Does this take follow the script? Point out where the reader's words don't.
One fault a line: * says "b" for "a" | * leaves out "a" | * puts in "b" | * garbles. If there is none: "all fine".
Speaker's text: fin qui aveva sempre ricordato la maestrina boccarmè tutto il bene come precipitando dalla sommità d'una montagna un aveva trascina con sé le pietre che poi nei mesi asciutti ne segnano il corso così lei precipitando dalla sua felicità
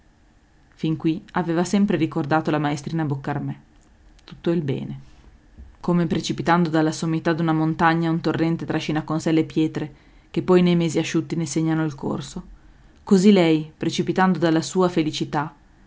* says "torrente" for "aveva"